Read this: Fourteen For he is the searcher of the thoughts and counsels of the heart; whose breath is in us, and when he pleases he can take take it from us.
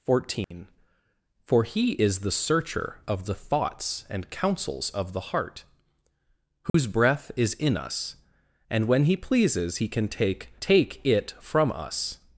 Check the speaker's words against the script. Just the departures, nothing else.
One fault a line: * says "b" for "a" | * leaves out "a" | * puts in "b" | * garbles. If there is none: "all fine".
all fine